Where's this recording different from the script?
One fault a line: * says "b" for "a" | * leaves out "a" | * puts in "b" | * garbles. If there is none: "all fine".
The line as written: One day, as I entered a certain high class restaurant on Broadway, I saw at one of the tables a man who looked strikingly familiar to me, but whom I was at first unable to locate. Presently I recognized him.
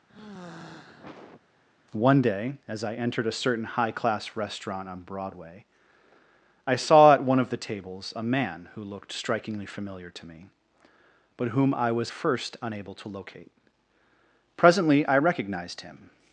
* leaves out "at"